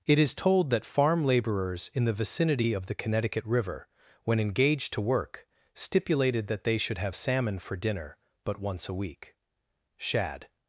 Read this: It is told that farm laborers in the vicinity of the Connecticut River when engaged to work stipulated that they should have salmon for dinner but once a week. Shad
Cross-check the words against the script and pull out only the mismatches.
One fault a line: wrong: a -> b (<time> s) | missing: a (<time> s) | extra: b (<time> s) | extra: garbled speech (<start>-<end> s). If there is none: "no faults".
no faults